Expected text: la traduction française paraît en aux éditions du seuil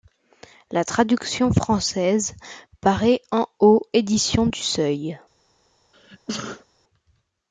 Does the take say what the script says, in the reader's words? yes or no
yes